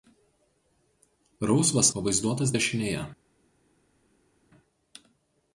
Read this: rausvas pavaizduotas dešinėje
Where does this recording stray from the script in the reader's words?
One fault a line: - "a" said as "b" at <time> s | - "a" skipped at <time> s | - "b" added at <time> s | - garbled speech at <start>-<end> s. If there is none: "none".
none